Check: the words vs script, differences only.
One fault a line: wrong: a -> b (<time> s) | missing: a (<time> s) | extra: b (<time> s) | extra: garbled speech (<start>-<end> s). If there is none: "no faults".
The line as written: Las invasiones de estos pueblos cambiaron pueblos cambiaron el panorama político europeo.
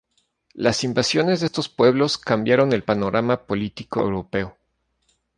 missing: pueblos cambiaron (2.7 s)